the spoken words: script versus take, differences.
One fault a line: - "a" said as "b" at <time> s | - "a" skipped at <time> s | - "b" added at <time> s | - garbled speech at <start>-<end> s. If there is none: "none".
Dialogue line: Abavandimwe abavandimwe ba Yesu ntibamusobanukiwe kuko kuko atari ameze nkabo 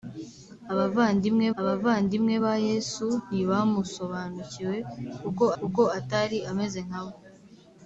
none